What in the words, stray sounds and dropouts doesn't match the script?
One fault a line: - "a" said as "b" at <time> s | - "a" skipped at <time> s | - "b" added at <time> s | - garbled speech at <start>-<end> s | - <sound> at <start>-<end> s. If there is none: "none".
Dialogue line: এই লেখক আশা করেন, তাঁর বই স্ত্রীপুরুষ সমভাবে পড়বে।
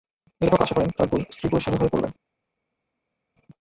none